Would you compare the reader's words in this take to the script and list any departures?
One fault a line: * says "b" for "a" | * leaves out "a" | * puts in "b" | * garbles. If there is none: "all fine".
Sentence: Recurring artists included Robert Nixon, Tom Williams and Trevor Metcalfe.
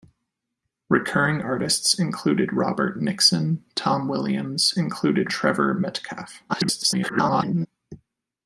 * says "included" for "and"
* garbles